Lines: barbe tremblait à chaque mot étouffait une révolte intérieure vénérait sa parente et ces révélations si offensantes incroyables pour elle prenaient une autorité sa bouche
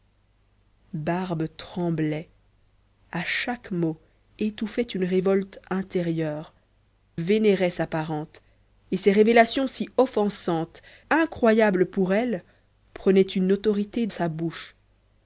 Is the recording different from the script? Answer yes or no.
no